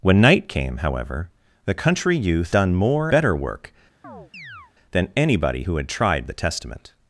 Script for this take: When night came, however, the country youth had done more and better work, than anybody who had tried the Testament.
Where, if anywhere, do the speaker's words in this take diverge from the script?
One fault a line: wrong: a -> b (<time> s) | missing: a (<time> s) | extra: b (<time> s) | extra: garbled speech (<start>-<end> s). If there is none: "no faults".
missing: had (2.5 s)
missing: and (3.1 s)